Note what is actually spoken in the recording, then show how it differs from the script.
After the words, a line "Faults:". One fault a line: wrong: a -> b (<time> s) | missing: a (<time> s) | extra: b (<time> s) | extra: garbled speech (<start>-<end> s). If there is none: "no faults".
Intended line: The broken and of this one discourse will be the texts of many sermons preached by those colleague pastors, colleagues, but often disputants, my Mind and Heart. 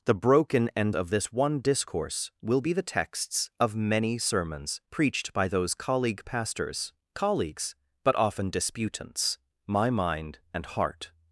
The broken and of this one discourse will be the texts of many sermons preached by those colleague pastors, colleagues, but often disputants, my Mind and Heart.
Faults:
no faults